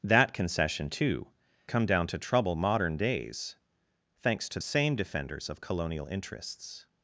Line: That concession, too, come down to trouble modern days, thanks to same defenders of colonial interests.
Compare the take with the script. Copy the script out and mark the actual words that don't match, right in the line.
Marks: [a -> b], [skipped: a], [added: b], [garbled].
That concession, too, come down to trouble modern days, thanks to same defenders of colonial interests.